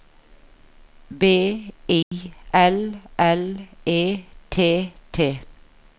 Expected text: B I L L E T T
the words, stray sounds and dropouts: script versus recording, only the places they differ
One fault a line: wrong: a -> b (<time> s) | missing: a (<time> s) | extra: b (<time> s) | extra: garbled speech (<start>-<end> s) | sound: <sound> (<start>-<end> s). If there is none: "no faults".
sound: dropout (2.0-2.1 s)